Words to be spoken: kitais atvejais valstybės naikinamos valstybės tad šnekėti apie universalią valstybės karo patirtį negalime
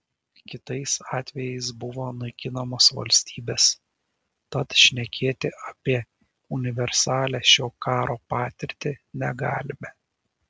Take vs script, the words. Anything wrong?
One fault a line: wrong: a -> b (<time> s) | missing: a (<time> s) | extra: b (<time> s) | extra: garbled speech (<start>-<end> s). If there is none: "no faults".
wrong: valstybės -> buvo (1.8 s)
wrong: valstybės -> šio (7.5 s)